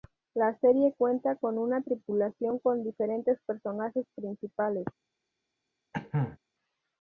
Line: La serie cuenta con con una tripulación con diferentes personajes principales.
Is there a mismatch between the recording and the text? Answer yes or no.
yes